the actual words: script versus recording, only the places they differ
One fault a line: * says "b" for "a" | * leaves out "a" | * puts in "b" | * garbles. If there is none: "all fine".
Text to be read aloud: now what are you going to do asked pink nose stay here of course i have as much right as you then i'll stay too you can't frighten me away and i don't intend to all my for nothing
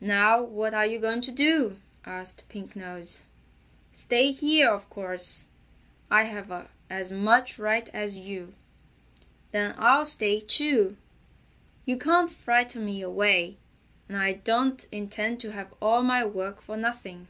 * puts in "have"
* puts in "work"